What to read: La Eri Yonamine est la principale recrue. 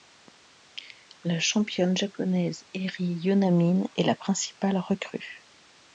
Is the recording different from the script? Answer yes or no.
yes